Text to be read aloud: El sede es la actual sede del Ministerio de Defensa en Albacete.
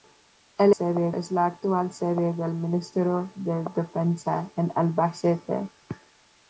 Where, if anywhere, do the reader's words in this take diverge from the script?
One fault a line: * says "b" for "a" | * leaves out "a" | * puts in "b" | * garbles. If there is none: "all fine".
all fine